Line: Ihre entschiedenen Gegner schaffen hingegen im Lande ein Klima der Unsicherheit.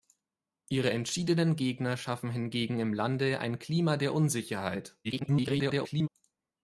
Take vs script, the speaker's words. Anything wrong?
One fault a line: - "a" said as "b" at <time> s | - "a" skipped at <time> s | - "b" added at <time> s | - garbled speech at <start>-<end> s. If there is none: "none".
- garbled speech at 5.0-6.1 s